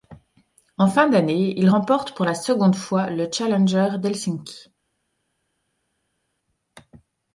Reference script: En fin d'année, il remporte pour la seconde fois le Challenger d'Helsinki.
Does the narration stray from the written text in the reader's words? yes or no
no